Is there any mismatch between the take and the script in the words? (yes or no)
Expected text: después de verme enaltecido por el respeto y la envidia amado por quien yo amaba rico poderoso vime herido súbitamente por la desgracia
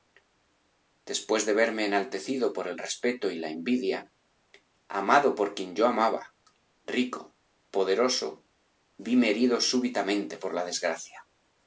no